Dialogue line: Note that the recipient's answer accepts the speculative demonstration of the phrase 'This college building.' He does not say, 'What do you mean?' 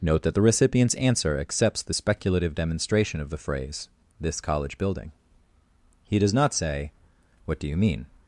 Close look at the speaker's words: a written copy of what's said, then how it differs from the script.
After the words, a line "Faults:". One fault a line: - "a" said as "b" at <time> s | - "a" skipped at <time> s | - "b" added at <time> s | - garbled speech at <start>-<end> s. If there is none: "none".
Note that the recipient's answer accepts the speculative demonstration of the phrase 'This college building.' He does not say, 'What do you mean?'
Faults:
none